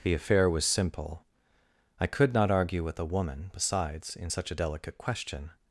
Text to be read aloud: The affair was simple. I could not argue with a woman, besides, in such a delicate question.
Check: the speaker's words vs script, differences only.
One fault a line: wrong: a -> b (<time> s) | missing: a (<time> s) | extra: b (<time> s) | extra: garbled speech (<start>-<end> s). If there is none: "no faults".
no faults